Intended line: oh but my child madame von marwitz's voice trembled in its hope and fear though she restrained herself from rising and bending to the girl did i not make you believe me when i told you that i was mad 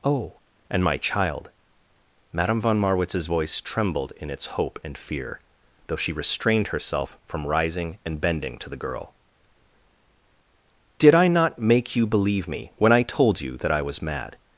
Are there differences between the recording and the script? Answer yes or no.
yes